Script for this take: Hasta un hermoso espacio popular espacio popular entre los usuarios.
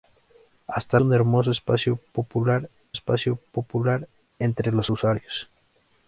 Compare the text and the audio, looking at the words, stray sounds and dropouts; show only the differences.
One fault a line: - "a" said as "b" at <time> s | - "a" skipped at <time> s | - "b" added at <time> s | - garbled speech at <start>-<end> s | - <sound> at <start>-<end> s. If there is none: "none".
none